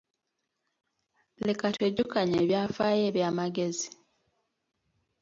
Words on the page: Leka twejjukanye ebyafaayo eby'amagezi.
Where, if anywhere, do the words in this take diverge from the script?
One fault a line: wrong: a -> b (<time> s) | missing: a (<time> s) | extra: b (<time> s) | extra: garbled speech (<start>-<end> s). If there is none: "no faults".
no faults